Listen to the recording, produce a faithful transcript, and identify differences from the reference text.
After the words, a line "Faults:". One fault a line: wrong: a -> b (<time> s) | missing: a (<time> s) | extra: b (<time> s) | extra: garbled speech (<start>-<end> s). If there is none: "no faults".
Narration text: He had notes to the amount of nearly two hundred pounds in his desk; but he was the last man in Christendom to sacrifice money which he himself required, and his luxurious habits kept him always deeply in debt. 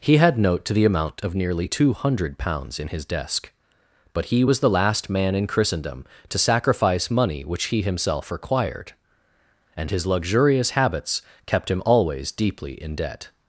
He had note to the amount of nearly two hundred pounds in his desk; but he was the last man in Christendom to sacrifice money which he himself required, and his luxurious habits kept him always deeply in debt.
Faults:
wrong: notes -> note (0.4 s)